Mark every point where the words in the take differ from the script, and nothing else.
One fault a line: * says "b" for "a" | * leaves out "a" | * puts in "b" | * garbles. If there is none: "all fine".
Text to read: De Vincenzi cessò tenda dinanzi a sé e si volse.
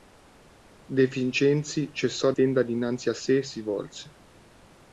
all fine